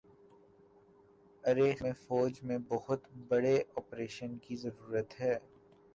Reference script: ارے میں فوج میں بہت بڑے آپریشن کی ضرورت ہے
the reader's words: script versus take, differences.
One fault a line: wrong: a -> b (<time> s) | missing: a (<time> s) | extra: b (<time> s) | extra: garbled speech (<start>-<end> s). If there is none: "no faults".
no faults